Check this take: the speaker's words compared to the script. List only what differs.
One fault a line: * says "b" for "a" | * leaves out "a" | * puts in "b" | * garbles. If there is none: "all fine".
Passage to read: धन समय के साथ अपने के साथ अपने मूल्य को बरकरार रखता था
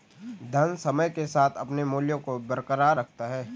* leaves out "के साथ अपने"
* says "है" for "था"